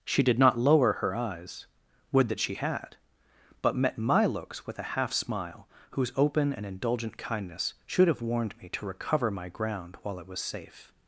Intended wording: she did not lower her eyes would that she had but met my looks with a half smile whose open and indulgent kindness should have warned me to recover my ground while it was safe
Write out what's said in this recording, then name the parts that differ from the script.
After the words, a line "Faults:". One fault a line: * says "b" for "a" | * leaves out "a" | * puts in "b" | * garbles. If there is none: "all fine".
she did not lower her eyes would that she had but met my looks with a half smile whose open and indulgent kindness should have warned me to recover my ground while it was safe
Faults:
all fine